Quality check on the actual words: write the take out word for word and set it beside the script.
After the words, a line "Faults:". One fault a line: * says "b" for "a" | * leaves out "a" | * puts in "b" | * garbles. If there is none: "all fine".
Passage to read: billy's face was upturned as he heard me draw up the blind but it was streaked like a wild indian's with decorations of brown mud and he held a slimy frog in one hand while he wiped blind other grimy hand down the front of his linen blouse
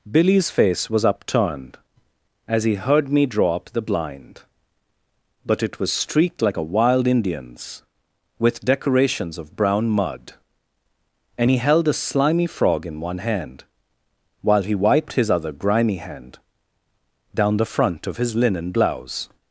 billy's face was upturned as he heard me draw up the blind but it was streaked like a wild indian's with decorations of brown mud and he held a slimy frog in one hand while he wiped his other grimy hand down the front of his linen blouse
Faults:
* says "his" for "blind"